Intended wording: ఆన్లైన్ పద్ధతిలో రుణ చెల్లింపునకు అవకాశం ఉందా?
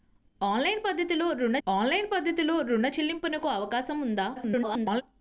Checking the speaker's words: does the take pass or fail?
fail